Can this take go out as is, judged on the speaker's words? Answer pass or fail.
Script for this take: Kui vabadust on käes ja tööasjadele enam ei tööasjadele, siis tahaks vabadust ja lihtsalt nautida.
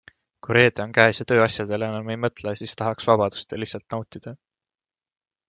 fail